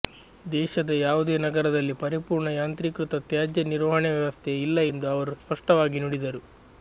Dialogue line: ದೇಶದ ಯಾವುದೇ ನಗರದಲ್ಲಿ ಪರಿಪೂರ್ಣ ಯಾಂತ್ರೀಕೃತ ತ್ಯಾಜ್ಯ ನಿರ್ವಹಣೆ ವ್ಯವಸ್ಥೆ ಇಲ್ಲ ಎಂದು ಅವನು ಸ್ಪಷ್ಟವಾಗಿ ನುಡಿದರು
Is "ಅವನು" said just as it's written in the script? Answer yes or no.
no